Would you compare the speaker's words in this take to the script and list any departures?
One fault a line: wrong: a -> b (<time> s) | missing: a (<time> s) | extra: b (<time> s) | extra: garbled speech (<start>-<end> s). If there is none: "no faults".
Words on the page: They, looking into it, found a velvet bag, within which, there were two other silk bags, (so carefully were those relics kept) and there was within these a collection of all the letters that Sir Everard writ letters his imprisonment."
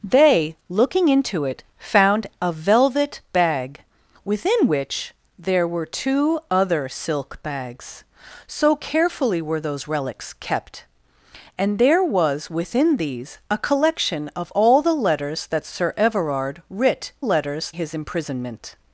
no faults